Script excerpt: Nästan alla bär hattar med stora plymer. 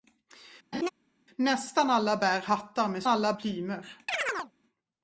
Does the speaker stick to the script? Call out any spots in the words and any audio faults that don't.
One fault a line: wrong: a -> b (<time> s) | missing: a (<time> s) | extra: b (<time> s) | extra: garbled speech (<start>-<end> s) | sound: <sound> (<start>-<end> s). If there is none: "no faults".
sound: laugh (0.7-0.9 s)
wrong: stora -> alla (3.1 s)
sound: chirp (4.1-4.5 s)